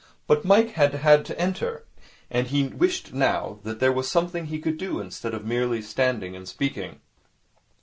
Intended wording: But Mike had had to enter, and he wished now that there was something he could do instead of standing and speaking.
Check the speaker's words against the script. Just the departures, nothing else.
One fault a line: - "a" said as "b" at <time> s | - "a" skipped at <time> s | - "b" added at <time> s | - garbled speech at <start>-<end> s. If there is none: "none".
- "merely" added at 5.4 s